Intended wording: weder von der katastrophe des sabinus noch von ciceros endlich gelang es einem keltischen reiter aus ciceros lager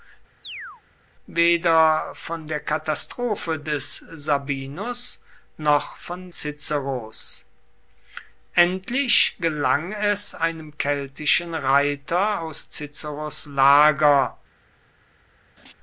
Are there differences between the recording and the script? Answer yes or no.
no